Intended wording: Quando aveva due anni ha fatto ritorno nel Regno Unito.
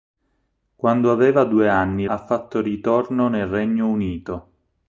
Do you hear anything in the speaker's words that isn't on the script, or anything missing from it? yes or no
no